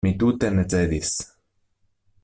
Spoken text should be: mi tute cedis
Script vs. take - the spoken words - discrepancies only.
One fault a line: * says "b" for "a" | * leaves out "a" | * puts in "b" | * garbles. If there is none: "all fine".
* puts in "ne"